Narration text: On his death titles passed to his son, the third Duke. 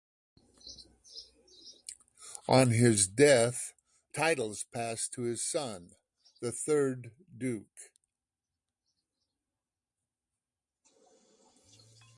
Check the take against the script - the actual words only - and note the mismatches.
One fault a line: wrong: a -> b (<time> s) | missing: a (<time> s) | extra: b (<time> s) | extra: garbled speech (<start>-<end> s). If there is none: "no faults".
no faults